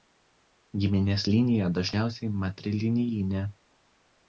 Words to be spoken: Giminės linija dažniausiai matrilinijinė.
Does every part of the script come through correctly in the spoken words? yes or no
yes